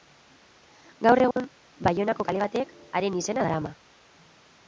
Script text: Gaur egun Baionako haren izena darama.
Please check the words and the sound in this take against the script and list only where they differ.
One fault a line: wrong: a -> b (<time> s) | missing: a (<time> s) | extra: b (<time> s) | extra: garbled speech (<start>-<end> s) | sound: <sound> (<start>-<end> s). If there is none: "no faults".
sound: dropout (1.3-1.4 s)
extra: kale batek (2.3 s)